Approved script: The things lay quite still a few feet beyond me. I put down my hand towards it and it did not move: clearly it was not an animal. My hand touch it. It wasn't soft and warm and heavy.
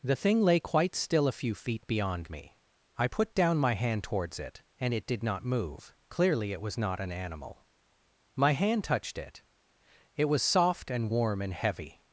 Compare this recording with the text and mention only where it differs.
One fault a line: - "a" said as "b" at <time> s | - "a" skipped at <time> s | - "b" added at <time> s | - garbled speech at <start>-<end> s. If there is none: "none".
- "things" said as "thing" at 0.1 s
- "touch" said as "touched" at 8.8 s
- "wasn't" said as "was" at 10.2 s